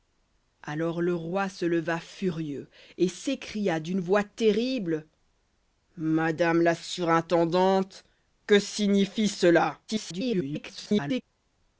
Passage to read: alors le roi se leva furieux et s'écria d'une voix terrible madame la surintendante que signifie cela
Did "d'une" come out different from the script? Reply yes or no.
no